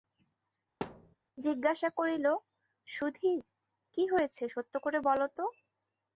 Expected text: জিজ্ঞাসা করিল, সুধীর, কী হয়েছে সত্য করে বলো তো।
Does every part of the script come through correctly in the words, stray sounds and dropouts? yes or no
no